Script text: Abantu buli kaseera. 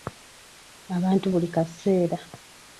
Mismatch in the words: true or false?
false